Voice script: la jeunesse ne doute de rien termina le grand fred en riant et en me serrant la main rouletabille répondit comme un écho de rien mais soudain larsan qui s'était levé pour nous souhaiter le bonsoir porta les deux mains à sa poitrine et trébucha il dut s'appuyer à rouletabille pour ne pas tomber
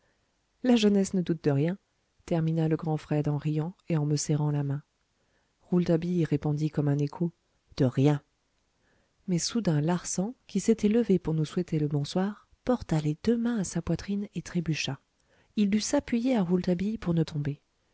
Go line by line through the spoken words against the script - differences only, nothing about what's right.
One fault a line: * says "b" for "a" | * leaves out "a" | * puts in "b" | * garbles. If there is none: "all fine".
* leaves out "pas"